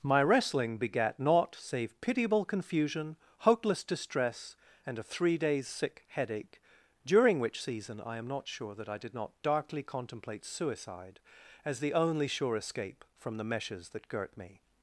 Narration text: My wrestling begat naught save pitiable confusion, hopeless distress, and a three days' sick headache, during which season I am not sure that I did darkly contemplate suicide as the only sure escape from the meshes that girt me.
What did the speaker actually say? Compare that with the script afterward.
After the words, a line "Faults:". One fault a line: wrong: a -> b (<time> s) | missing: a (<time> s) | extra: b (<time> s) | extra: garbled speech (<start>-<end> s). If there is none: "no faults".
My wrestling begat naught save pitiable confusion, hopeless distress, and a three days' sick headache, during which season I am not sure that I did not darkly contemplate suicide as the only sure escape from the meshes that girt me.
Faults:
extra: not (9.1 s)